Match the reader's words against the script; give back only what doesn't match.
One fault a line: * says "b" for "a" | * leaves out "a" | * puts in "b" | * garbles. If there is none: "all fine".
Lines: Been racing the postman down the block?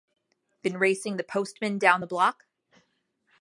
all fine